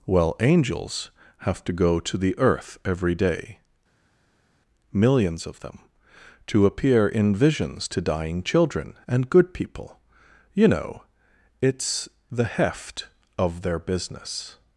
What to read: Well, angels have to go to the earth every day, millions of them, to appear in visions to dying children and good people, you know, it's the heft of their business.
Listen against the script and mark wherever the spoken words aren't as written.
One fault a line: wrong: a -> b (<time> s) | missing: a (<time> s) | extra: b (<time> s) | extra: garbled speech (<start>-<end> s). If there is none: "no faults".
no faults